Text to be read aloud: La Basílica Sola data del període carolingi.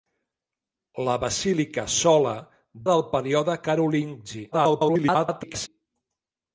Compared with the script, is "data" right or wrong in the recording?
wrong